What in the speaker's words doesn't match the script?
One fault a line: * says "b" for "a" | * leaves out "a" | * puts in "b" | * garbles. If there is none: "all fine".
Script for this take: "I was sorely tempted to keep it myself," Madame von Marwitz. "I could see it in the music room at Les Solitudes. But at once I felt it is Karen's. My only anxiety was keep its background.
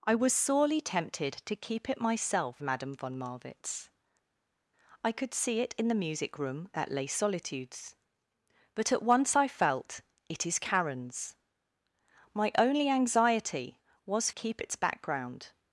all fine